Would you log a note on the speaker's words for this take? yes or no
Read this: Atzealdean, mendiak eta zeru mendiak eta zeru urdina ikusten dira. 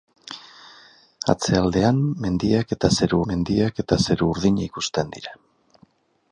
no